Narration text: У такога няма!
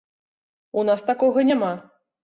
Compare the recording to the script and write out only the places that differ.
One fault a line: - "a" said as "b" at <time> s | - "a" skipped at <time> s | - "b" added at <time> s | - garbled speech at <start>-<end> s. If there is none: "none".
- "нас" added at 0.9 s